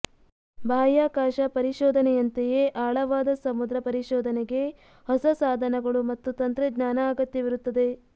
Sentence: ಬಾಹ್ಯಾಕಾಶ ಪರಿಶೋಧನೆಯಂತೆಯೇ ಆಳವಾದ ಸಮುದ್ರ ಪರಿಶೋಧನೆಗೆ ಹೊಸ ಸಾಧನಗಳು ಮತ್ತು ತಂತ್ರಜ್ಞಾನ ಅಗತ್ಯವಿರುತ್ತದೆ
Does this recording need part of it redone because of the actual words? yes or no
no